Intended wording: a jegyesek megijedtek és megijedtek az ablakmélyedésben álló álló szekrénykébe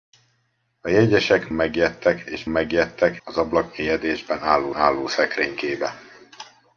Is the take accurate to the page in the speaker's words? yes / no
yes